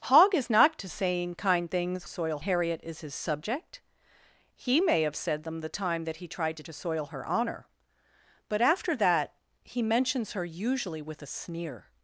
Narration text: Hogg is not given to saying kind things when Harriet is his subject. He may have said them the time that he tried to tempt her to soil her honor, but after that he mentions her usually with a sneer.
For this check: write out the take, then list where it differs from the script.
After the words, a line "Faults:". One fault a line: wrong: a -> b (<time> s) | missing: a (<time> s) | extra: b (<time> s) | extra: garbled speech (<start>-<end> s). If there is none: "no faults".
Hogg is not to saying kind things soil Harriet is his subject. He may have said them the time that he tried to to soil her honor, but after that he mentions her usually with a sneer.
Faults:
missing: given (0.8 s)
wrong: when -> soil (2.1 s)
missing: tempt her (6.6 s)